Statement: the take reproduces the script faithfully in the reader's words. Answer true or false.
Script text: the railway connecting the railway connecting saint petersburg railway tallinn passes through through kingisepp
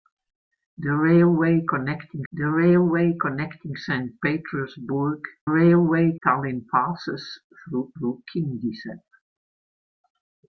true